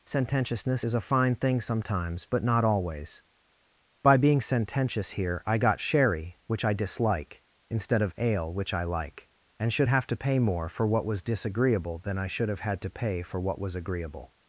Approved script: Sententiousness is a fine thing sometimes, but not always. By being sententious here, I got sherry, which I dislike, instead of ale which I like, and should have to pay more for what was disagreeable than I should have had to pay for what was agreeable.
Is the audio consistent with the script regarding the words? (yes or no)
yes